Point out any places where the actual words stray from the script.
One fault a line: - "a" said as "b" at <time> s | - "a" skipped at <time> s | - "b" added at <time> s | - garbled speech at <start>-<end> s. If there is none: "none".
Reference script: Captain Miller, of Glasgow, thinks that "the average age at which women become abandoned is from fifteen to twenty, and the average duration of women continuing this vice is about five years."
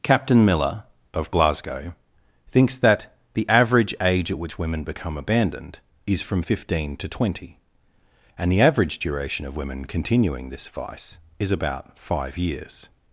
none